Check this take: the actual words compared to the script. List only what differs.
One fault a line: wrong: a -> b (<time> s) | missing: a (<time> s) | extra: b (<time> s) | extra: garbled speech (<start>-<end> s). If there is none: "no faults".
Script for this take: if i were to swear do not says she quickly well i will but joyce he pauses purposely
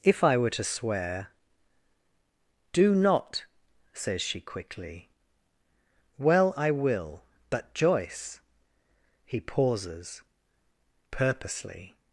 no faults